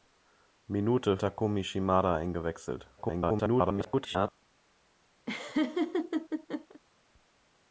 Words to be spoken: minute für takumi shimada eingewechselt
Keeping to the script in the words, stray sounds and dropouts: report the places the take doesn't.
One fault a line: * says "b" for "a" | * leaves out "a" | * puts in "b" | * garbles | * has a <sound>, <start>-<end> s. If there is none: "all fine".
* leaves out "für"
* garbles
* has a laugh, 5.3-6.8 s